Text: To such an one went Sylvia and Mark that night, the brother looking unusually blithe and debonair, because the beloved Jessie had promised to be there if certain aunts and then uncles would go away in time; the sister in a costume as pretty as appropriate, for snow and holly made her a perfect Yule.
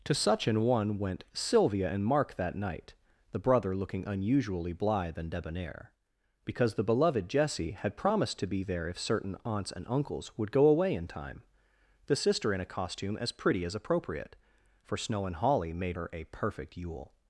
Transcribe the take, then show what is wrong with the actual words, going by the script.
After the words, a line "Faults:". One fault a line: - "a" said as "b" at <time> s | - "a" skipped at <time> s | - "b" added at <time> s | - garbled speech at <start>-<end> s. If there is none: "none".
To such an one went Sylvia and Mark that night, the brother looking unusually blithe and debonair, because the beloved Jessie had promised to be there if certain aunts and uncles would go away in time; the sister in a costume as pretty as appropriate, for snow and holly made her a perfect Yule.
Faults:
- "then" skipped at 9.8 s